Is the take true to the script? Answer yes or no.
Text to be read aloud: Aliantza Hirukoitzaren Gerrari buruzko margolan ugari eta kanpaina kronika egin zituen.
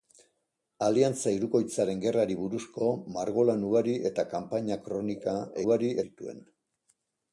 no